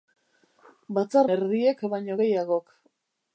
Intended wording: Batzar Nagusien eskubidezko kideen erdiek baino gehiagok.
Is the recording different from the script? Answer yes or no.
yes